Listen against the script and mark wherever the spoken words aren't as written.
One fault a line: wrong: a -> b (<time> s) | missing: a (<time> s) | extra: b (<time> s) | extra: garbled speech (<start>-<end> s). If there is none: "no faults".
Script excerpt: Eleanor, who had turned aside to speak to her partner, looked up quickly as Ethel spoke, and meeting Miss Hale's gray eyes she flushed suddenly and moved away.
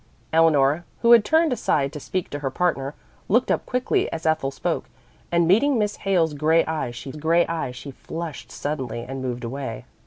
extra: gray eyes she (7.2 s)